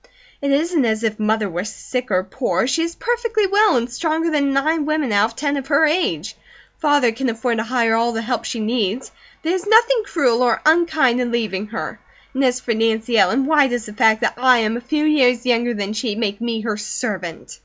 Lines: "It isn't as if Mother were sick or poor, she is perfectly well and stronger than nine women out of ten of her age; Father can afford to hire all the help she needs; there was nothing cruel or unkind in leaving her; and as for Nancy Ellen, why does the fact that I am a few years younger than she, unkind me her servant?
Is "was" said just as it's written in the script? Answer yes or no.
no